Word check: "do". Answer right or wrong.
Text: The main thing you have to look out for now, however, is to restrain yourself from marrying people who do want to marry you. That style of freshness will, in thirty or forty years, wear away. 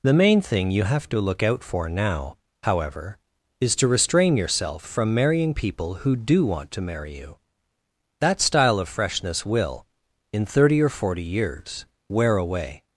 right